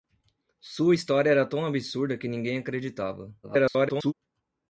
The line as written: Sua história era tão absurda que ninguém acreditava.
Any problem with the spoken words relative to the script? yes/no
yes